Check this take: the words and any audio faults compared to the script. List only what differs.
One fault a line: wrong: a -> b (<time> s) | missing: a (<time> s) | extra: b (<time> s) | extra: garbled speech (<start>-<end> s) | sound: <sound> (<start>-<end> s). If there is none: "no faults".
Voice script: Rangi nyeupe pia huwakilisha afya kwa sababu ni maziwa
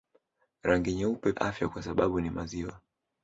missing: pia huwakilisha (1.3 s)